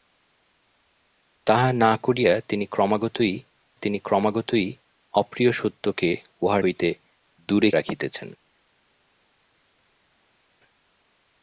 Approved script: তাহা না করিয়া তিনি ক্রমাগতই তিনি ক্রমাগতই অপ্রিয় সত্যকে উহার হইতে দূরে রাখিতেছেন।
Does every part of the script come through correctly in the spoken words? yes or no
yes